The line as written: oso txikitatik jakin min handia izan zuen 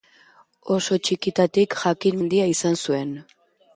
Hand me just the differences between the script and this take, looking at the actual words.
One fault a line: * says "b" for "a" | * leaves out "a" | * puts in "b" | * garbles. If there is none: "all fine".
* leaves out "min"